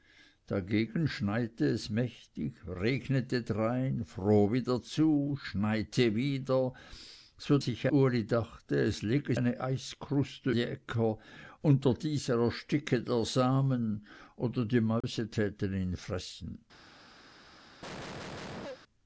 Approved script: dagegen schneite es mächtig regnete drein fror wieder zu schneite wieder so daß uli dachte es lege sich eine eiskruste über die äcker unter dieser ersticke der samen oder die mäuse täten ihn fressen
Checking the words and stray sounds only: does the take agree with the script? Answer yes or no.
no